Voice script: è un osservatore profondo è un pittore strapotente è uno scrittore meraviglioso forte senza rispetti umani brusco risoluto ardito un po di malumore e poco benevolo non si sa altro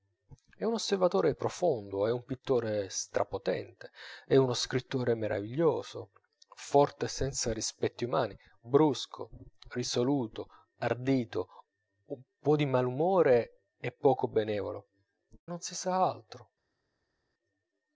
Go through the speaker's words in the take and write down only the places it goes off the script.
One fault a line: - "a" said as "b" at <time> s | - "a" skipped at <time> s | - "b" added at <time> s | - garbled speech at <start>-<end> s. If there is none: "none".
none